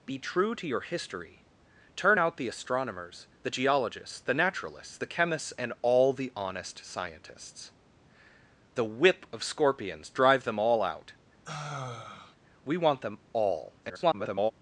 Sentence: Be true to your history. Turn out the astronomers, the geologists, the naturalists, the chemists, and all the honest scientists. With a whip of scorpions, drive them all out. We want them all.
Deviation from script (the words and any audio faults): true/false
true